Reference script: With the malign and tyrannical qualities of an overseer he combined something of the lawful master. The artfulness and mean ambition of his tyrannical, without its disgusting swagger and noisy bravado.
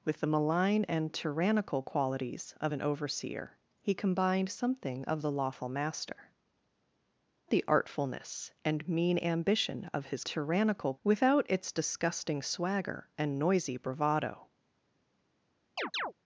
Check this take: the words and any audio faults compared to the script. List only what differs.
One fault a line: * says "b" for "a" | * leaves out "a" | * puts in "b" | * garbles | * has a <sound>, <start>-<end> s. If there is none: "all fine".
* has a chirp, 15.8-16.1 s